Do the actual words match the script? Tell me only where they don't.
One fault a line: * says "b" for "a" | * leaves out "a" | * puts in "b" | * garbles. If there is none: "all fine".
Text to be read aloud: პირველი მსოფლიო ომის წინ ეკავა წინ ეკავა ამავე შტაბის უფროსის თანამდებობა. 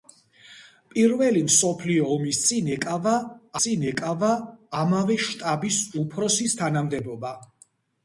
all fine